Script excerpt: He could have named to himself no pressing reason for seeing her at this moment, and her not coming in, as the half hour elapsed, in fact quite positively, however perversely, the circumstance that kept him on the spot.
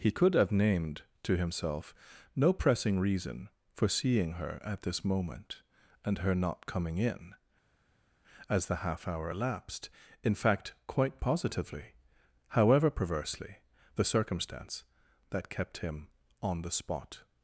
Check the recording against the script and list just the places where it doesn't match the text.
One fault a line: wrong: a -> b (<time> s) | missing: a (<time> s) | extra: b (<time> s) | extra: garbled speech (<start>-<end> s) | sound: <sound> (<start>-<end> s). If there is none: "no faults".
no faults